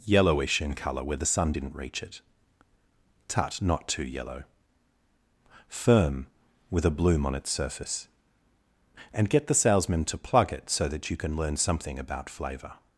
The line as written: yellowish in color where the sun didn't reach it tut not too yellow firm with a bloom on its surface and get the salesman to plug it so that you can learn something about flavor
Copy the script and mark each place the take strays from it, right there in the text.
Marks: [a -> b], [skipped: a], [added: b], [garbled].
yellowish in color where the sun didn't reach it tut not too yellow firm with a bloom on its surface and get the salesman to plug it so that you can learn something about flavor